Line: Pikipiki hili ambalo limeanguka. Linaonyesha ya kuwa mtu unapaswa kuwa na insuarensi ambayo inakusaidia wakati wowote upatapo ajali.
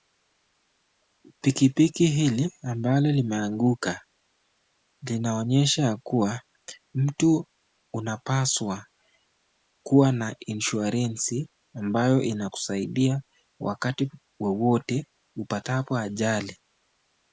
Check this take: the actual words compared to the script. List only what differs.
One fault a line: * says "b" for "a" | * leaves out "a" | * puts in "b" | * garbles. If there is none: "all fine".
all fine